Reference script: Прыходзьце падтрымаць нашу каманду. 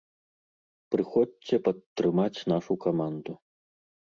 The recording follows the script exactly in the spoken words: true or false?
true